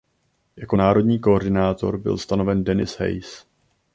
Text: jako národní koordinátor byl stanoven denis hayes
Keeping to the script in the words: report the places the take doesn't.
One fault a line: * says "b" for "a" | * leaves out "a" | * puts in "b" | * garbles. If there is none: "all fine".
all fine